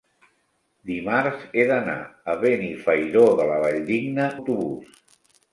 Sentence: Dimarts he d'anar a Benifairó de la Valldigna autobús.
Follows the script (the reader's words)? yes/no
yes